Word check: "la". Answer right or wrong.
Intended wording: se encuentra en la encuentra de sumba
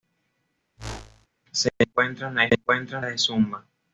right